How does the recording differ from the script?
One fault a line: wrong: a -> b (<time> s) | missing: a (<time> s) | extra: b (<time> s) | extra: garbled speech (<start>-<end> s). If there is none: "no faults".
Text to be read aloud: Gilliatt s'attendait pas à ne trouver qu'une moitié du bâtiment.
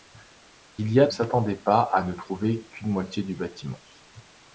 no faults